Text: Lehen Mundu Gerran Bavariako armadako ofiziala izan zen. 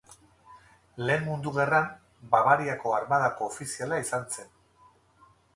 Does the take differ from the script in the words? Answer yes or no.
no